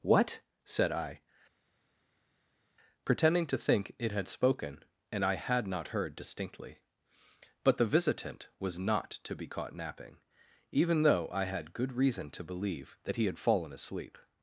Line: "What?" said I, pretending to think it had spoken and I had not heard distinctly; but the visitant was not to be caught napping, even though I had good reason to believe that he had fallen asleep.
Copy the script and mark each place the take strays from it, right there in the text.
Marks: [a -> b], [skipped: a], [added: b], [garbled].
"What?" said I, pretending to think it had spoken and I had not heard distinctly; but the visitant was not to be caught napping, even though I had good reason to believe that he had fallen asleep.